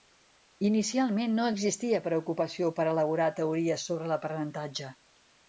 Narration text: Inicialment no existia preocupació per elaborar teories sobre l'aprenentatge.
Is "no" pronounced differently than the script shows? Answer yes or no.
no